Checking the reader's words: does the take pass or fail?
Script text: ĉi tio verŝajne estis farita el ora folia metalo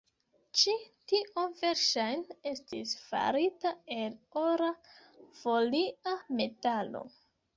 pass